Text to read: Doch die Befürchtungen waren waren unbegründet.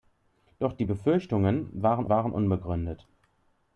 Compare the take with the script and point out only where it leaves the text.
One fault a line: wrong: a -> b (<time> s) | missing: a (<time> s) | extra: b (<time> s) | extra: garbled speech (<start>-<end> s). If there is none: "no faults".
no faults